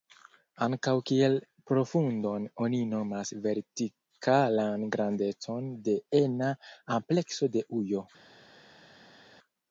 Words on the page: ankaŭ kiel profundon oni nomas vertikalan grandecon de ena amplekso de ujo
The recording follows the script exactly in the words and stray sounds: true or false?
true